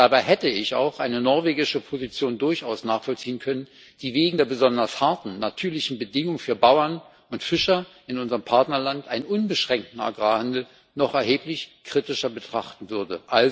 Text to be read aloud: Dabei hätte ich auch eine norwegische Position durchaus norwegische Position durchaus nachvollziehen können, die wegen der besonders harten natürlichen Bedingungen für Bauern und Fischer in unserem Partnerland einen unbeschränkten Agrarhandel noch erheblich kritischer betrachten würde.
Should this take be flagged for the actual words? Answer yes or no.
yes